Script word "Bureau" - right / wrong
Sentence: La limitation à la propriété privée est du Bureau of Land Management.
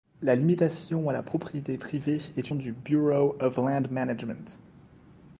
right